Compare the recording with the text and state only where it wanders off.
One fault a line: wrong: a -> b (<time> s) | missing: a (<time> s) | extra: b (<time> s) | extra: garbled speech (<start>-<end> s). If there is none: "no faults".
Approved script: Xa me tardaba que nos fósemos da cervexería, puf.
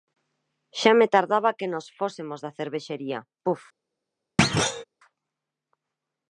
no faults